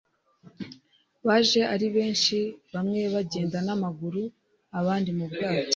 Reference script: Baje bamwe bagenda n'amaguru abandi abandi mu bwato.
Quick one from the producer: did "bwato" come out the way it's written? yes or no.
yes